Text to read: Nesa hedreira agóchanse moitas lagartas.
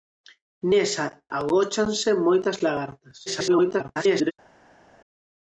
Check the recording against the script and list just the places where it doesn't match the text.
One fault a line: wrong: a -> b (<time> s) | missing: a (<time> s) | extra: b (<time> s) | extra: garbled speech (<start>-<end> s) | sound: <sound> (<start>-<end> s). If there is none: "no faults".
missing: hedreira (1.1 s)
extra: garbled speech (3.3-4.3 s)